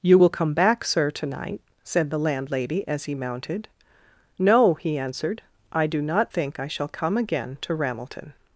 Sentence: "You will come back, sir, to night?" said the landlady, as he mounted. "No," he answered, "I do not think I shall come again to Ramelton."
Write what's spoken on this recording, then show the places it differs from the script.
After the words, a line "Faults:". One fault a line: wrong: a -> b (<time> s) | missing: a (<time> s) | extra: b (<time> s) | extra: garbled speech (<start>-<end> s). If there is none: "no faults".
"You will come back, sir, to night?" said the landlady, as he mounted. "No," he answered, "I do not think I shall come again to Ramelton."
Faults:
no faults